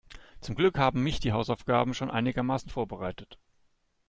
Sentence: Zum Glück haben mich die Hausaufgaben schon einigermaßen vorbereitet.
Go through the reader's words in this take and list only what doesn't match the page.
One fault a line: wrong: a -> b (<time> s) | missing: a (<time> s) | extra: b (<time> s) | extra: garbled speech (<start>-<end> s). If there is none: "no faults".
no faults